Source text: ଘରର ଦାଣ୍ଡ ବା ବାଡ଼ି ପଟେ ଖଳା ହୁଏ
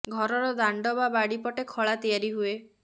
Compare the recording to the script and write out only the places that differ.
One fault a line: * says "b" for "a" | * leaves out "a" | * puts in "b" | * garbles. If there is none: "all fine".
* puts in "ତିଆରି"